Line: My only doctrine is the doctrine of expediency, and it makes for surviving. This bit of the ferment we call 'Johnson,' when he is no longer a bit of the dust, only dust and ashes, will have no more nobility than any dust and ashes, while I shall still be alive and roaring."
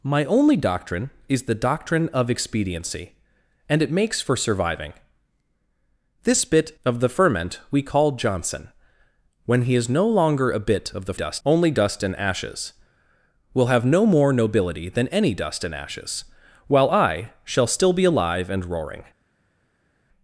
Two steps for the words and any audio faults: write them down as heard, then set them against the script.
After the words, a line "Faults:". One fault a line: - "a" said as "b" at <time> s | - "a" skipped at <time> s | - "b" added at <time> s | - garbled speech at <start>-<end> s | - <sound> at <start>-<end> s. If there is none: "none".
My only doctrine is the doctrine of expediency, and it makes for surviving. This bit of the ferment we call 'Johnson,' when he is no longer a bit of the dust, only dust and ashes, will have no more nobility than any dust and ashes, while I shall still be alive and roaring."
Faults:
none